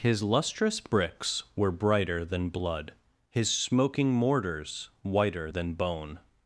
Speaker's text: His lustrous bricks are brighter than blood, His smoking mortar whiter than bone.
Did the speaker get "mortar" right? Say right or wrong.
wrong